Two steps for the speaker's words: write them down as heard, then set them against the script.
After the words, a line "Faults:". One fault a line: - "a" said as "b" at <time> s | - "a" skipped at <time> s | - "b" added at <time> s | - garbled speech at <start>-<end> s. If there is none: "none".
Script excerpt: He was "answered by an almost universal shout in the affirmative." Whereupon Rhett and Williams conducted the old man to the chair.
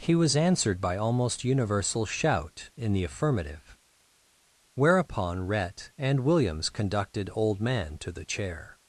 He was "answered by almost universal shout in the affirmative." Whereupon Rhett and Williams conducted old man to the chair.
Faults:
- "an" skipped at 1.0 s
- "the" skipped at 7.3 s